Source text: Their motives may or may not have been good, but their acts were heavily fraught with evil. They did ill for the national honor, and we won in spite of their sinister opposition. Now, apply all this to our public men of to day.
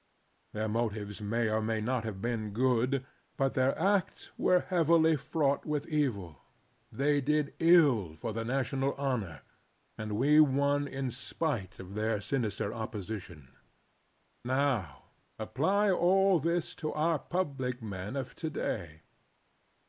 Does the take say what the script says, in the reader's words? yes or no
yes